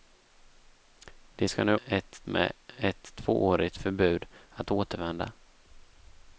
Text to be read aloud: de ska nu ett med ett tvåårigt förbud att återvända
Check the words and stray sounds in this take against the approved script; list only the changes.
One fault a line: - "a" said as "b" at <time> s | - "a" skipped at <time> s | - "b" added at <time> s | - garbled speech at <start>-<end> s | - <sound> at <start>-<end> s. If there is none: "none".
none